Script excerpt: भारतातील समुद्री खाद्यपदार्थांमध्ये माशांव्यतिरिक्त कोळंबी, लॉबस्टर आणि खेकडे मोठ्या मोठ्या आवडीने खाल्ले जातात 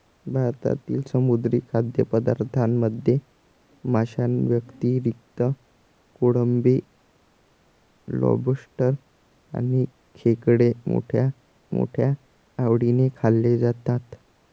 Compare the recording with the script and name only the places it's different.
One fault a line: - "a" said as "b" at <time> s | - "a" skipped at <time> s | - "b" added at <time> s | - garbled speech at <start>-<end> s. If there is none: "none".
none